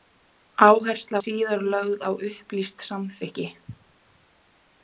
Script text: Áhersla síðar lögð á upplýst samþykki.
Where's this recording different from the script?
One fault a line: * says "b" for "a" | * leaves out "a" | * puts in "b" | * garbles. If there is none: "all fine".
all fine